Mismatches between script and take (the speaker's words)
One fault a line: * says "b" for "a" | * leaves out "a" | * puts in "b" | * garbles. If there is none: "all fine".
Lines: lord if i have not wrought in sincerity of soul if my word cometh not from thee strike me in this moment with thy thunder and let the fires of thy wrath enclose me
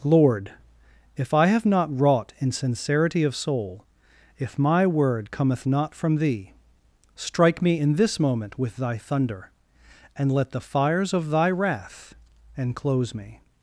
all fine